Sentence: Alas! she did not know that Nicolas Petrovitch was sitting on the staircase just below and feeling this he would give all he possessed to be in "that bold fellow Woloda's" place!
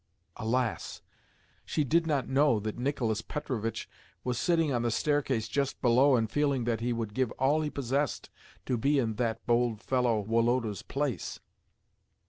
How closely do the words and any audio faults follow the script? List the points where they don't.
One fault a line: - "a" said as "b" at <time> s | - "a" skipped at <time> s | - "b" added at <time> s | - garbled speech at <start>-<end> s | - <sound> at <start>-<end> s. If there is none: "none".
- "this" said as "that" at 6.6 s